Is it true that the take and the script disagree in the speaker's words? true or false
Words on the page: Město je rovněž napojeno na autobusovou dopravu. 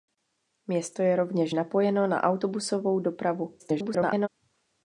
true